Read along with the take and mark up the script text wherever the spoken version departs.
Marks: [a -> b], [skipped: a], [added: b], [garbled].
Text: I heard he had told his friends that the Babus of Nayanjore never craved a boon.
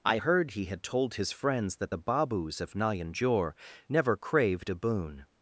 I heard he had told his friends that the Babus of Nayanjore never craved a boon.